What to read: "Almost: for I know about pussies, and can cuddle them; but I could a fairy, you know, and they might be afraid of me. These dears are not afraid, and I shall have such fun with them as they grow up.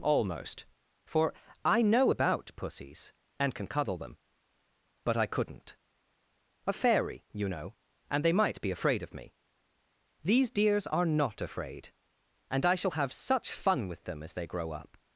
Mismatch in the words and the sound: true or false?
true